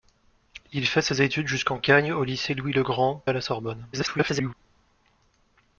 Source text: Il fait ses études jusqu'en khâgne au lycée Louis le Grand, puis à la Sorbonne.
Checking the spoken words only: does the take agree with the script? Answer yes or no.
no